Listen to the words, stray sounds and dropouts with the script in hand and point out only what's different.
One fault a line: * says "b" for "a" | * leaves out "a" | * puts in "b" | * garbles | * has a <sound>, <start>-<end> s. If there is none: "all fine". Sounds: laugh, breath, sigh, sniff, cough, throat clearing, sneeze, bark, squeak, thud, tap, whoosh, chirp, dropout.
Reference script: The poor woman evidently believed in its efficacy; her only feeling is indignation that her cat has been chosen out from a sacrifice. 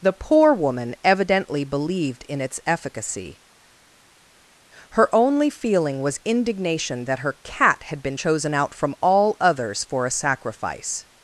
* says "was" for "is"
* says "had" for "has"
* puts in "all others for"